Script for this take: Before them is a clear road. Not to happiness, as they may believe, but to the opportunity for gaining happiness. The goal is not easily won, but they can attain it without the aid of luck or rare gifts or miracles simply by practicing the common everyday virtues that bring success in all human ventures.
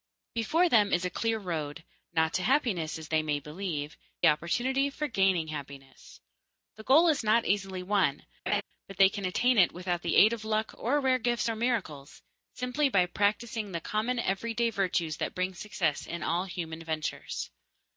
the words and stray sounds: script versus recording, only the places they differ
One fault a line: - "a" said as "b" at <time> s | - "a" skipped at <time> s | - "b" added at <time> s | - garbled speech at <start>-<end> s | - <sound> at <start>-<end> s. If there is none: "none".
- "but to the" skipped at 4.0 s
- laugh at 8.5-8.6 s